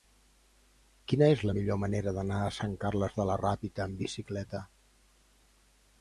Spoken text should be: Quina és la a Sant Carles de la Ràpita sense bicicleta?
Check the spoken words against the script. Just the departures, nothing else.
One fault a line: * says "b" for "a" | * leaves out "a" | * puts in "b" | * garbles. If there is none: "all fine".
* puts in "millor manera d'anar"
* says "amb" for "sense"